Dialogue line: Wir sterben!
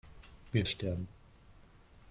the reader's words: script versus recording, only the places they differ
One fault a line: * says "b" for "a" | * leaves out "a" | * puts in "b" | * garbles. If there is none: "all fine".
all fine